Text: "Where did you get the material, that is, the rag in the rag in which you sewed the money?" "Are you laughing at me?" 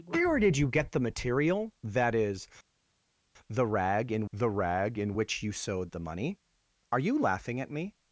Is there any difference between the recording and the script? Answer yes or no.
no